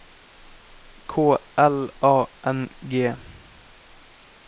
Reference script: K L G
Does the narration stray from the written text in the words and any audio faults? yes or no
yes